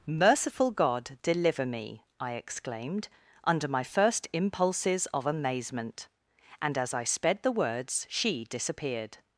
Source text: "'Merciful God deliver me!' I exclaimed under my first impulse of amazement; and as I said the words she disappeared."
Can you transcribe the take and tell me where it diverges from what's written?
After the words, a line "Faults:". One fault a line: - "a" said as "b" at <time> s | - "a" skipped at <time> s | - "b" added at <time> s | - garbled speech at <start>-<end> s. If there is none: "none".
"'Merciful God deliver me!' I exclaimed under my first impulses of amazement; and as I sped the words she disappeared."
Faults:
- "impulse" said as "impulses" at 4.3 s
- "said" said as "sped" at 7.0 s